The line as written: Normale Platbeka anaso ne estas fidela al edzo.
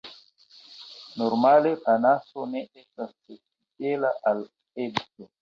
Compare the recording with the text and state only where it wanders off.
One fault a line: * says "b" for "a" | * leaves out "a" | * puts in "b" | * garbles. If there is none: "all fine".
* leaves out "Platbeka"